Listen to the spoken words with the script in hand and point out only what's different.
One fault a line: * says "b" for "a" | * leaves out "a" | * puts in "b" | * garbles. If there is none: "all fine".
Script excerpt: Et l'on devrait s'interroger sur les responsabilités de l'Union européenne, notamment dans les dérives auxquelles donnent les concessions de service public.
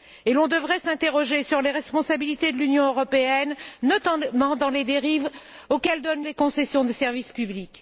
all fine